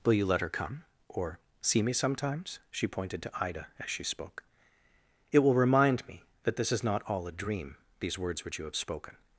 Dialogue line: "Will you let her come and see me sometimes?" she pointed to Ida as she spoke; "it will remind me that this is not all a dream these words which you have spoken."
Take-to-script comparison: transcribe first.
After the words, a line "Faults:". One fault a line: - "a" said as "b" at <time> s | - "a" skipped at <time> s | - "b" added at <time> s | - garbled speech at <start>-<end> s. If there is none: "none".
"Will you let her come or see me sometimes?" she pointed to Ida as she spoke; "it will remind me that this is not all a dream these words which you have spoken."
Faults:
- "and" said as "or" at 1.1 s